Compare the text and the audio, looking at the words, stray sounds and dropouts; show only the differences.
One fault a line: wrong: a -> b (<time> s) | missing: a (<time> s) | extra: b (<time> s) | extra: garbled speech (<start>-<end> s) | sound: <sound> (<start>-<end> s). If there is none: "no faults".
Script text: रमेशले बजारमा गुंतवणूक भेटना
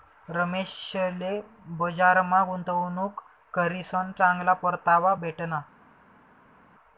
extra: करीसन चांगला परतावा (3.5 s)